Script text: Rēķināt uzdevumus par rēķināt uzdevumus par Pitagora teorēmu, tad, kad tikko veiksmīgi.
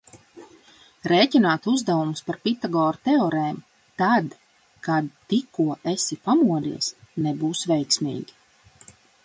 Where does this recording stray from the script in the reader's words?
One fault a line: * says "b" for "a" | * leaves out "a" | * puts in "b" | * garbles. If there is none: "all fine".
* leaves out "rēķināt uzdevumus par"
* puts in "esi pamodies nebūs"